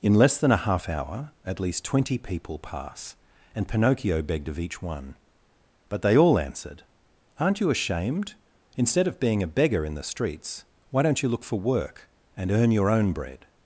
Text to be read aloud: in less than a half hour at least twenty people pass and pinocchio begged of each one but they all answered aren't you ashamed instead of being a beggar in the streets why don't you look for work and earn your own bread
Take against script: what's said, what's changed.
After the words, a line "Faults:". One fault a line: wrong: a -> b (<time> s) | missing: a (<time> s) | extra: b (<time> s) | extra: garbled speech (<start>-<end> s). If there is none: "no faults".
in less than a half hour at least twenty people pass and pinocchio begged of each one but they all answered aren't you ashamed instead of being a beggar in the streets why don't you look for work and earn your own bread
Faults:
no faults